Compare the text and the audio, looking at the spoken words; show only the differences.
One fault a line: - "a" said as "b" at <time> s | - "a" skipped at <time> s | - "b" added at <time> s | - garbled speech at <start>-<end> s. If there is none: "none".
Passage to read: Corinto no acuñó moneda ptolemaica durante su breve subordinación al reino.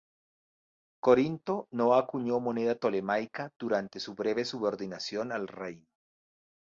none